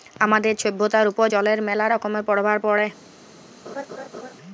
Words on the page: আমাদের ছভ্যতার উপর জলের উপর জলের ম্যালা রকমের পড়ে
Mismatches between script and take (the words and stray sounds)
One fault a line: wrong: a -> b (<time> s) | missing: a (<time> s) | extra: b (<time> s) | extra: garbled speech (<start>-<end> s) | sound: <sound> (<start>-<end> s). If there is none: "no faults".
missing: উপর জলের (1.6 s)
extra: পরভাব (2.3 s)
sound: laugh (3.6-4.3 s)